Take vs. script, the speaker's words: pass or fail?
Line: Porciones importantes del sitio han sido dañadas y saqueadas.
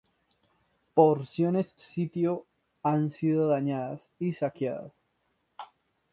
fail